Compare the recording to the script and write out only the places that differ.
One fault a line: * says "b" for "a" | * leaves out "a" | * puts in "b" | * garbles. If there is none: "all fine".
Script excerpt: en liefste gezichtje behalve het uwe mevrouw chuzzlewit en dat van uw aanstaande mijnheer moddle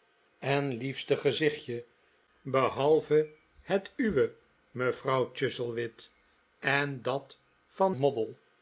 * leaves out "uw aanstaande mijnheer"